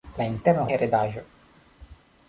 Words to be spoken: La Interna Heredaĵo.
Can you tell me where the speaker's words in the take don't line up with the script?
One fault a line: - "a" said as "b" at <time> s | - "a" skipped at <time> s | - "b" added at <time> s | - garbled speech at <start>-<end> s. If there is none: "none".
none